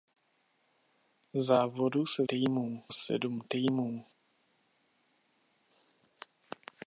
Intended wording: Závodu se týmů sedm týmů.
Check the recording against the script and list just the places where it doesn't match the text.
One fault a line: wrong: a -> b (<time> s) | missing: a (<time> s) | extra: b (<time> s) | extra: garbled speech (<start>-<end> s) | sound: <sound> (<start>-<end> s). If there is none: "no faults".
no faults